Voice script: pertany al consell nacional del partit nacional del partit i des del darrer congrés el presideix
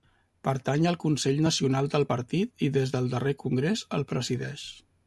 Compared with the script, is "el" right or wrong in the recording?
right